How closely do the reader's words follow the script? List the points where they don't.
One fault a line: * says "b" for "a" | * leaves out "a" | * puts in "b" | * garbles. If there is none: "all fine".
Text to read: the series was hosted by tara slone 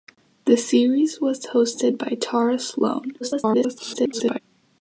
* garbles